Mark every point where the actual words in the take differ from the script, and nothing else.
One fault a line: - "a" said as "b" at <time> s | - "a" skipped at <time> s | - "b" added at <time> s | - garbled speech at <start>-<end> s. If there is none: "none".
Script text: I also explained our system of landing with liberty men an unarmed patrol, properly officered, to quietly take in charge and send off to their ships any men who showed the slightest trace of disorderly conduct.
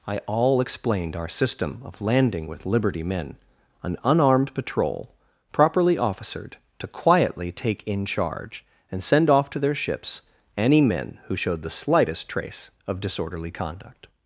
- "also" said as "all" at 0.2 s